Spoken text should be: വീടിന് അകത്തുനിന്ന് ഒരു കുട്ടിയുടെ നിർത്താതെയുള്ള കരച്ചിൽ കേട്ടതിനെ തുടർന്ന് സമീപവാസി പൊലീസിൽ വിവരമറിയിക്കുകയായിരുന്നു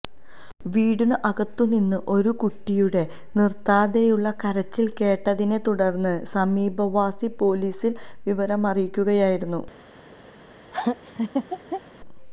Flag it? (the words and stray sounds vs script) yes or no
yes